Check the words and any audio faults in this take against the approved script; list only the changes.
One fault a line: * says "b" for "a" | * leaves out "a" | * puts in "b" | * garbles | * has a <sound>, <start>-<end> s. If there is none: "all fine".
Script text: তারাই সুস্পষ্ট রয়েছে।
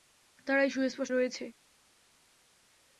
all fine